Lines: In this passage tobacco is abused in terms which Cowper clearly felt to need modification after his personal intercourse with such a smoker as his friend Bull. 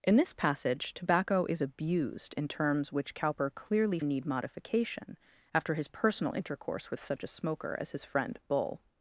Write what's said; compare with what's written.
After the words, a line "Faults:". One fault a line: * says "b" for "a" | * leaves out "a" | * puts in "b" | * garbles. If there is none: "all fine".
In this passage tobacco is abused in terms which Cowper clearly need modification after his personal intercourse with such a smoker as his friend Bull.
Faults:
* leaves out "felt to"